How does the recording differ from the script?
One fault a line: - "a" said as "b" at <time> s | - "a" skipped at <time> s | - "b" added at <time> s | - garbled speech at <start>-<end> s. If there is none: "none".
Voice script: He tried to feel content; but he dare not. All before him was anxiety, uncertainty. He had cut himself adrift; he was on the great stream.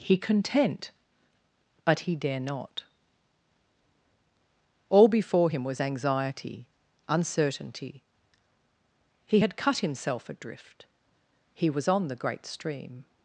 - "tried to feel" skipped at 0.2 s